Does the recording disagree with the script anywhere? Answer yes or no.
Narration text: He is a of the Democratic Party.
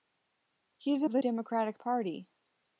no